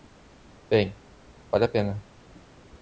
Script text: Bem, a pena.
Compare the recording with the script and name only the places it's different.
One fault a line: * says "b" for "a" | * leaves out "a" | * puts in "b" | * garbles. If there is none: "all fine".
* puts in "vale"